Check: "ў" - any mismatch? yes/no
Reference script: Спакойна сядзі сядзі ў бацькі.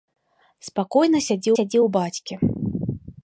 no